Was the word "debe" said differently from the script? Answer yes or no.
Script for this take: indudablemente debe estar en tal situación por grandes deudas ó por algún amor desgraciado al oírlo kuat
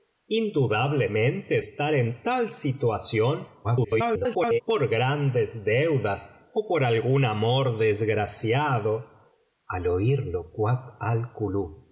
yes